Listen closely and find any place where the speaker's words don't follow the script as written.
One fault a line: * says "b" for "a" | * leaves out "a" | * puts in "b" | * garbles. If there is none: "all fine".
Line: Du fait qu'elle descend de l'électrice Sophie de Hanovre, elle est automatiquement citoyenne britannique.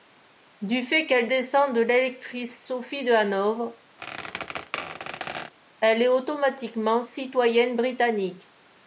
all fine